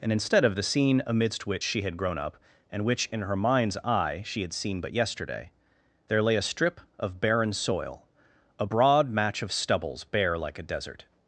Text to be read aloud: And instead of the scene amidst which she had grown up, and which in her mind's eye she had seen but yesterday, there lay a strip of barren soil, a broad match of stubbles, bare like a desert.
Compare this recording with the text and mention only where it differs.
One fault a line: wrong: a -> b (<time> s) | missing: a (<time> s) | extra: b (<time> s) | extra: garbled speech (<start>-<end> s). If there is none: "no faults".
no faults